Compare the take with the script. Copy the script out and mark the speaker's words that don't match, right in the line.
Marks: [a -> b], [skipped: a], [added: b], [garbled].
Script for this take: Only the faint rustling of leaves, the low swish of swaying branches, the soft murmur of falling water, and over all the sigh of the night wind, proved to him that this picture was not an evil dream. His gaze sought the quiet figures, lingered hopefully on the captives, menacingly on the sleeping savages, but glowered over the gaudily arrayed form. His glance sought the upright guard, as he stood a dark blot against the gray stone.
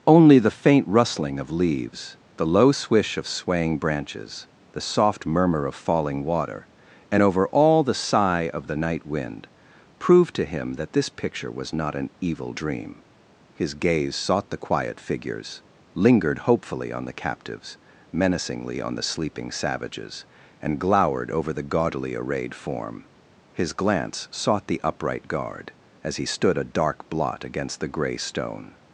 Only the faint rustling of leaves, the low swish of swaying branches, the soft murmur of falling water, and over all the sigh of the night wind, proved to him that this picture was not an evil dream. His gaze sought the quiet figures, lingered hopefully on the captives, menacingly on the sleeping savages, [but -> and] glowered over the gaudily arrayed form. His glance sought the upright guard, as he stood a dark blot against the gray stone.